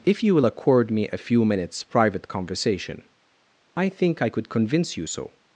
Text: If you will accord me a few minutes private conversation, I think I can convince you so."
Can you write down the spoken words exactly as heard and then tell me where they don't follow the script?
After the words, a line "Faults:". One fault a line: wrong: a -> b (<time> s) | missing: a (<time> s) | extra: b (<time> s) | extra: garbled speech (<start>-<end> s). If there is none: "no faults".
If you will accord me a few minutes private conversation, I think I could convince you so."
Faults:
wrong: can -> could (4.3 s)